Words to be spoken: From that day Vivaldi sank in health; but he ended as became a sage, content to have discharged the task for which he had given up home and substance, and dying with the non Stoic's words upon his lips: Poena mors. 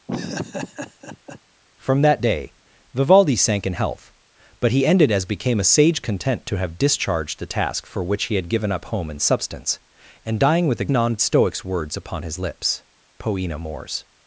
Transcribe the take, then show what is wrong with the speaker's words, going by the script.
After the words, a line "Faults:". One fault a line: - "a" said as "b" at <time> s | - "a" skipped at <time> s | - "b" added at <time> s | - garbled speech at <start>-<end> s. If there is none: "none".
From that day Vivaldi sank in health; but he ended as became a sage, content to have discharged the task for which he had given up home and substance, and dying with the non Stoic's words upon his lips: Poena mors.
Faults:
none